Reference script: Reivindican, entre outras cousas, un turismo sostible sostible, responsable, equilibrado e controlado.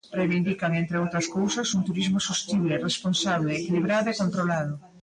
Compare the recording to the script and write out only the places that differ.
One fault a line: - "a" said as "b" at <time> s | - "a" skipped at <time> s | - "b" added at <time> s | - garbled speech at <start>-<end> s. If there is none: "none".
- "sostible" skipped at 2.8 s